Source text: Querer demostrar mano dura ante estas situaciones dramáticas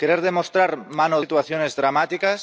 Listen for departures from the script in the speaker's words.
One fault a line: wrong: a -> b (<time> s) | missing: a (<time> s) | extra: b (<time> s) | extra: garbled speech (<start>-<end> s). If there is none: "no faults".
missing: dura ante estas (1.2 s)